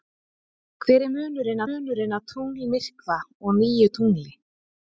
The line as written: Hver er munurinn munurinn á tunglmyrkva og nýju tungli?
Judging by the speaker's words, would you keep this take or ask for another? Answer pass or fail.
pass